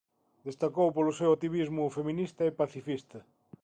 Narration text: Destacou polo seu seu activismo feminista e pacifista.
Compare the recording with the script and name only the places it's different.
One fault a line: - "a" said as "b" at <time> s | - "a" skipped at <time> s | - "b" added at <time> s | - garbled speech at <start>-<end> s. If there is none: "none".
- "seu" skipped at 1.3 s